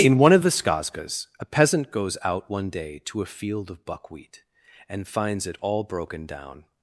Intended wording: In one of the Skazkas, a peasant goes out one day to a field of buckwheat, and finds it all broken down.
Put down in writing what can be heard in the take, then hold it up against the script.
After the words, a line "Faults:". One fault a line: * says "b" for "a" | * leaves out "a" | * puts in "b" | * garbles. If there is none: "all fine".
In one of the Skazkas, a peasant goes out one day to a field of buckwheat, and finds it all broken down.
Faults:
all fine